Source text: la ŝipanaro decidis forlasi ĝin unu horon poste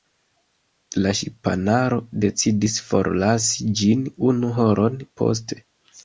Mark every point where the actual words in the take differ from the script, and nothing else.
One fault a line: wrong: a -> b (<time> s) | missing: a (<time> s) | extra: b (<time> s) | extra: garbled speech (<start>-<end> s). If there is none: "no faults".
no faults